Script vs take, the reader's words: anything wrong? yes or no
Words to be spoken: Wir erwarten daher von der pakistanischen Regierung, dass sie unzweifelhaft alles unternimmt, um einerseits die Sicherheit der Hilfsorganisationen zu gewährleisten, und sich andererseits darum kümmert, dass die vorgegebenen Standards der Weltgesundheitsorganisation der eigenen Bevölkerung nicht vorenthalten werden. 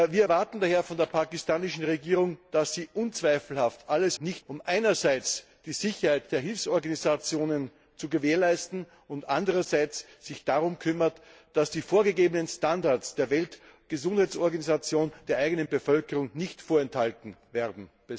yes